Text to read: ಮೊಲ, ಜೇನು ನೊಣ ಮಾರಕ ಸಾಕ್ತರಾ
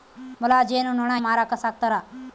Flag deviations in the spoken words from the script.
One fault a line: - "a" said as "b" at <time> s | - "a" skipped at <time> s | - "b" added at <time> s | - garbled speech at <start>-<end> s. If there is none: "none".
none